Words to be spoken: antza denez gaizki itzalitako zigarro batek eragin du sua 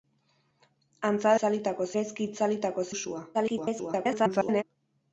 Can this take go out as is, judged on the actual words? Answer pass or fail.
fail